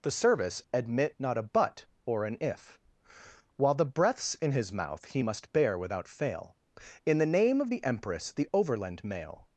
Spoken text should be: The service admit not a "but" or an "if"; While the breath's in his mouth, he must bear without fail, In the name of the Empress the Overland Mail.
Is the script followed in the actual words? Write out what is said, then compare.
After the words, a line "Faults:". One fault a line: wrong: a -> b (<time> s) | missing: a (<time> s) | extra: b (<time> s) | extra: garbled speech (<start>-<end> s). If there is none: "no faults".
The service admit not a "but" or an "if"; While the breath's in his mouth, he must bear without fail, In the name of the Empress the Overland Mail.
Faults:
no faults